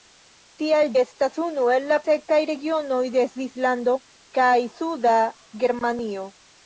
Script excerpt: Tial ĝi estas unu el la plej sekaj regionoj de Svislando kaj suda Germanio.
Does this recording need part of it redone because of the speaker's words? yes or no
yes